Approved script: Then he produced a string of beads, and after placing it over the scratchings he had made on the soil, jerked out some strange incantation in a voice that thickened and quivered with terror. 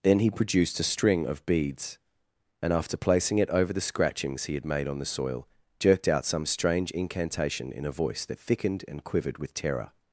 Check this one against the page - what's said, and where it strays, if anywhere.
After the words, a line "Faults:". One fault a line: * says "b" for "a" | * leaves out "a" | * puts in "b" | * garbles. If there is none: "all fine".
Then he produced a string of beads, and after placing it over the scratchings he had made on the soil, jerked out some strange incantation in a voice that thickened and quivered with terror.
Faults:
all fine